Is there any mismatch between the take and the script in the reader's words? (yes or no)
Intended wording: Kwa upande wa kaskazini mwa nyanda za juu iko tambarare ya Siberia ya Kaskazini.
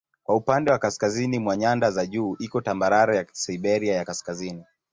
no